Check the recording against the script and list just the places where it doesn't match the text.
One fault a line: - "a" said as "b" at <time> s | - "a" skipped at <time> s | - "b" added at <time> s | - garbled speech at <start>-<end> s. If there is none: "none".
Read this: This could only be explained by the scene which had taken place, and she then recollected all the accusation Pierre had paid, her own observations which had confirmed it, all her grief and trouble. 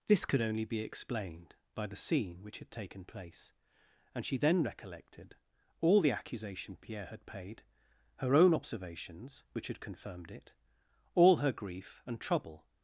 none